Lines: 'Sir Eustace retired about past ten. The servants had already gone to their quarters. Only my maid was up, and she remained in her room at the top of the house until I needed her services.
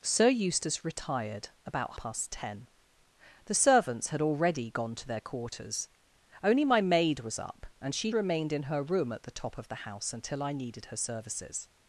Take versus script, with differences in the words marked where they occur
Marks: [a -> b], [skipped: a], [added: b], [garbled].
'Sir Eustace retired about past ten. The servants had already gone to their quarters. Only my maid was up, and she remained in her room at the top of the house until I needed her services.